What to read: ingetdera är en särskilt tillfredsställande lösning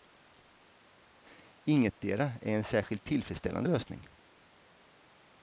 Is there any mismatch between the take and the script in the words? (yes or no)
no